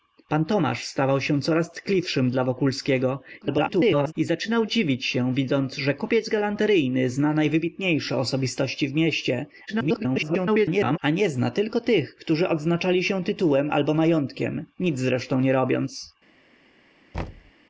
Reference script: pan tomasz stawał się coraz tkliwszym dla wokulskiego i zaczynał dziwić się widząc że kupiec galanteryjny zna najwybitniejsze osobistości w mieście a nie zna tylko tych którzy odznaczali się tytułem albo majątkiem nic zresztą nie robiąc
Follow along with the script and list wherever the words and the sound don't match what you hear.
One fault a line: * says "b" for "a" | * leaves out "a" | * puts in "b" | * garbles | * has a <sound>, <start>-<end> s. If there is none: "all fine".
* garbles
* garbles
* has a thud, 17.1-17.5 s